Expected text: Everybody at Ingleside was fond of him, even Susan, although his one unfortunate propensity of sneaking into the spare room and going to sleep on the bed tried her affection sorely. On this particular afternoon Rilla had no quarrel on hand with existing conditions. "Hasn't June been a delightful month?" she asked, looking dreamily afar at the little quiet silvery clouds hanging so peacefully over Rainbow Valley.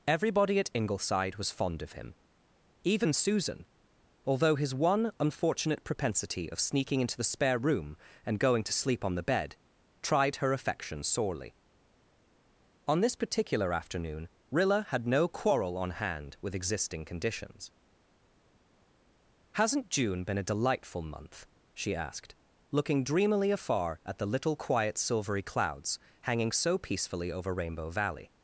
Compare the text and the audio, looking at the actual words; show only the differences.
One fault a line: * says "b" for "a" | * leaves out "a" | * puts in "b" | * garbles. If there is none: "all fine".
all fine